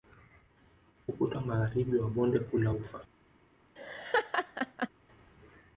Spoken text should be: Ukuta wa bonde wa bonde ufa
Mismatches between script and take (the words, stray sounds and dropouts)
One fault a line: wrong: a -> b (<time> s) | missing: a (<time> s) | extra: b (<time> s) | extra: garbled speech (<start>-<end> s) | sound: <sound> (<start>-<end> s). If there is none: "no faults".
wrong: bonde -> magharibi (1.4 s)
extra: kuu la (2.4 s)
sound: laugh (3.8-4.9 s)